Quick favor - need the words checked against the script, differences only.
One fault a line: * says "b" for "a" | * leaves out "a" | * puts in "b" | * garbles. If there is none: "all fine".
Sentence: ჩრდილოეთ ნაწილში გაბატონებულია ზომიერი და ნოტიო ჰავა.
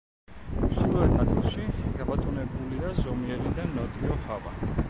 all fine